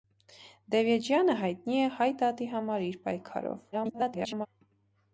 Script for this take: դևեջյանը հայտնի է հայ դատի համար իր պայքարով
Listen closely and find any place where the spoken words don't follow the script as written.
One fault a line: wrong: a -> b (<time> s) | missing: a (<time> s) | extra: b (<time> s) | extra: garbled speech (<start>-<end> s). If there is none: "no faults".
extra: garbled speech (3.7-4.5 s)